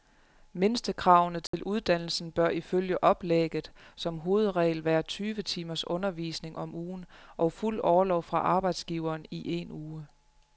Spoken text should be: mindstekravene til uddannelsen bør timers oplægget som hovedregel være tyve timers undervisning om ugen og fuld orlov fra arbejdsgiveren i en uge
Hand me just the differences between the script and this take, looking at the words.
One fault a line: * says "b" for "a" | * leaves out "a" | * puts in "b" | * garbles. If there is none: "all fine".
* says "ifølge" for "timers"